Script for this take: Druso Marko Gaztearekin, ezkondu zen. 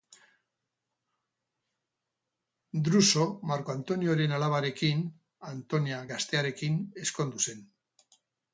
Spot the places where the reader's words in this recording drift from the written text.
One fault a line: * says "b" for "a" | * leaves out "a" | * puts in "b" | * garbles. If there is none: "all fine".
* puts in "Antonioren alabarekin Antonia"